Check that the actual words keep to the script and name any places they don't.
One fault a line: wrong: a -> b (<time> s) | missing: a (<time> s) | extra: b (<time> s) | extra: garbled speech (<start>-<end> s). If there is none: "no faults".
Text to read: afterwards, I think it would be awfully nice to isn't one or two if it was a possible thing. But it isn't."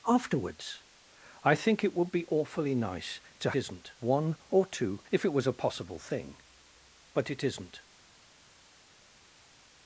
no faults